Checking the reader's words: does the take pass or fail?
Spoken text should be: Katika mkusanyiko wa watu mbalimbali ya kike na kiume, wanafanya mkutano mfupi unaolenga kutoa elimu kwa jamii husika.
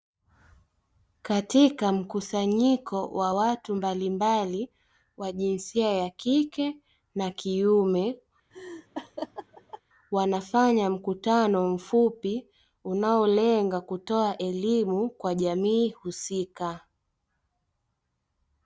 fail